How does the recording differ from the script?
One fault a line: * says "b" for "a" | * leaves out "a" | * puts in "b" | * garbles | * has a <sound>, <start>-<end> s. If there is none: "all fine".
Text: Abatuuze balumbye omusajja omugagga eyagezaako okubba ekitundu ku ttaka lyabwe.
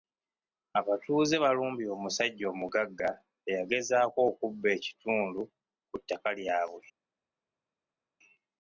all fine